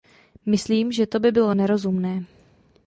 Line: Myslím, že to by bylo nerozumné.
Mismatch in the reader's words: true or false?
false